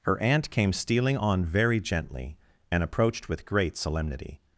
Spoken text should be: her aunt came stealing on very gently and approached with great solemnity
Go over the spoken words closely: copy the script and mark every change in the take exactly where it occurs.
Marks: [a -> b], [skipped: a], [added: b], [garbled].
her aunt came stealing on very gently and approached with great solemnity